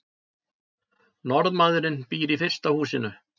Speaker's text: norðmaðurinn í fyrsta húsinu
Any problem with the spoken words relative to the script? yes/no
yes